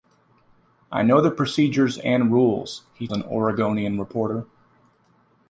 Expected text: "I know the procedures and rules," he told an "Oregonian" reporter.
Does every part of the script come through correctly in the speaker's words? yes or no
no